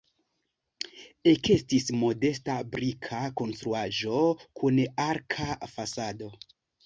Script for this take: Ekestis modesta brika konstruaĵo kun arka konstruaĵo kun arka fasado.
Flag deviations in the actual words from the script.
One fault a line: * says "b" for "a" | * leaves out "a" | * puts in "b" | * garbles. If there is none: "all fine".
* leaves out "konstruaĵo kun arka"